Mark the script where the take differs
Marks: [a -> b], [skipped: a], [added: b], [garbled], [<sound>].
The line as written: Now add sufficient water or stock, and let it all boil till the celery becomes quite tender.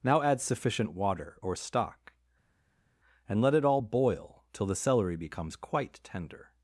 Now add sufficient water or stock, and let it all boil till the celery becomes quite tender.